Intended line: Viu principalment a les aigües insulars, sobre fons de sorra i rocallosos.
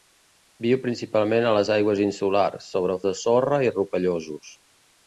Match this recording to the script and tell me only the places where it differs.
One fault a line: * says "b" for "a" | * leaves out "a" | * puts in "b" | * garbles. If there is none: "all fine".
* leaves out "fons"